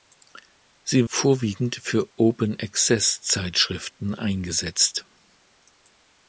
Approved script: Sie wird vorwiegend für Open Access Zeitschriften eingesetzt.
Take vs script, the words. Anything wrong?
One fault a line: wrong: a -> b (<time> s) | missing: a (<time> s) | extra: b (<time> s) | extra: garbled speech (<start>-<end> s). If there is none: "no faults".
missing: wird (1.1 s)